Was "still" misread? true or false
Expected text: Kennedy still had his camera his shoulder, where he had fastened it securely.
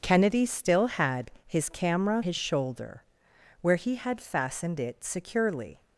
false